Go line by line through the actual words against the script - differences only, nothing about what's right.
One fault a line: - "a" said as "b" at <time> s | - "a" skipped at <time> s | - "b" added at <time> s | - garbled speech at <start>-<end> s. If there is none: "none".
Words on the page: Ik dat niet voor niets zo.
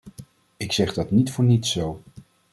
- "zeg" added at 0.7 s